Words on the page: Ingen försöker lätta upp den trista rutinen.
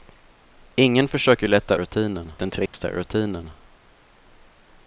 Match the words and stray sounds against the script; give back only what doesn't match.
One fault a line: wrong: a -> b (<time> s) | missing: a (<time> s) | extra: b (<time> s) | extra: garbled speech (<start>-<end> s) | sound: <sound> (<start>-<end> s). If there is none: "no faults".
wrong: upp -> rutinen (1.7 s)
sound: dropout (2.7-2.7 s)